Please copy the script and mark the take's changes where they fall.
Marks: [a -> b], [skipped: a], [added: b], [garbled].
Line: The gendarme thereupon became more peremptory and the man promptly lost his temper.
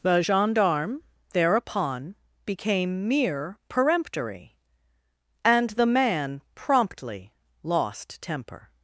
The gendarme thereupon became [more -> mere] peremptory and the man promptly lost [skipped: his] temper.